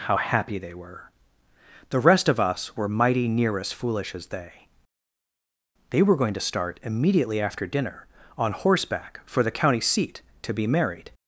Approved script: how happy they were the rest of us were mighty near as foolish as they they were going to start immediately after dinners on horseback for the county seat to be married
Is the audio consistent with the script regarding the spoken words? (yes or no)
no